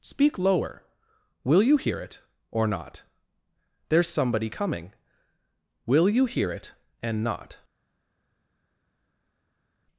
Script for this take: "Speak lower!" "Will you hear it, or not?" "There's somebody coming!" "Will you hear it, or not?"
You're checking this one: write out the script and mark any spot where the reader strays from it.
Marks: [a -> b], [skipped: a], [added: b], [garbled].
"Speak lower!" "Will you hear it, or not?" "There's somebody coming!" "Will you hear it, [or -> and] not?"